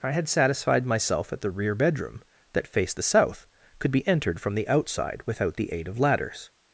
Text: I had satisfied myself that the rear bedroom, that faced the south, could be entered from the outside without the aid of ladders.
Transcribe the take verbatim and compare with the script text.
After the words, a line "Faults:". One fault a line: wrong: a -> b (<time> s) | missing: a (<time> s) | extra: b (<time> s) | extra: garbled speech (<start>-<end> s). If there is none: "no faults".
I had satisfied myself that the rear bedroom, that faced the south, could be entered from the outside without the aid of ladders.
Faults:
no faults